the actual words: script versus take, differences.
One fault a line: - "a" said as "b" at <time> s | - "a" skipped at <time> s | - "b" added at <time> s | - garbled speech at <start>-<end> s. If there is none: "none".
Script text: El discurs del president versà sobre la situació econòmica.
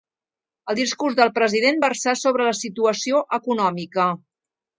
none